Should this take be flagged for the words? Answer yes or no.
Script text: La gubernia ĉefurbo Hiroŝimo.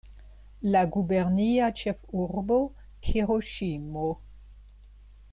no